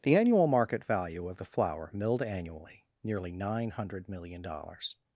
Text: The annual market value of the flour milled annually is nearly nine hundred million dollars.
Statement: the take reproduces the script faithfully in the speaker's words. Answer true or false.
false